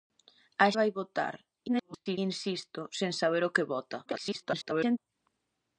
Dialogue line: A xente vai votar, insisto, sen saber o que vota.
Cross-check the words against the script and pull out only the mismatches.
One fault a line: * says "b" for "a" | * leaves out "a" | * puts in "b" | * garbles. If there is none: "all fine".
* leaves out "xente"
* garbles
* garbles